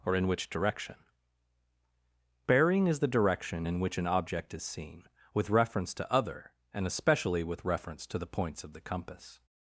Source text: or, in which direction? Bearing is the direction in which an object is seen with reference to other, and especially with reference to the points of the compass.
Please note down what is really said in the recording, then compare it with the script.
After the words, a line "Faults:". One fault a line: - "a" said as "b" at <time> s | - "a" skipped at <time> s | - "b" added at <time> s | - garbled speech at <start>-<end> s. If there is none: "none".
or, in which direction? Bearing is the direction in which an object is seen with reference to other, and especially with reference to the points of the compass.
Faults:
none